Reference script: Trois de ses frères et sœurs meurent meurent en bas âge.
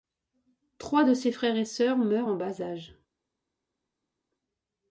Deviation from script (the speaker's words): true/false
true